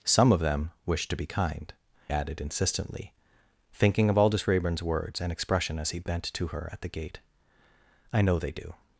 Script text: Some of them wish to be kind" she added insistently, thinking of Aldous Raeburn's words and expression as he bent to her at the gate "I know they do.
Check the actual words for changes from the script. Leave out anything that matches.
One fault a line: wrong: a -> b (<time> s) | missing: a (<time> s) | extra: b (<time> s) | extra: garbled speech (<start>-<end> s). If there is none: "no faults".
missing: she (1.7 s)